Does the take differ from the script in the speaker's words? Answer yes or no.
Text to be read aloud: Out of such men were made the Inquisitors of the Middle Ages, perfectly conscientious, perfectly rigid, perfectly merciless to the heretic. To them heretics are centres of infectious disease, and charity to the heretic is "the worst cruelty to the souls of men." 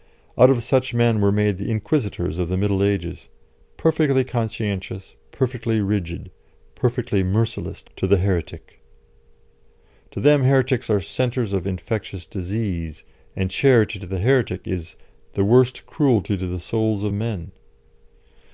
no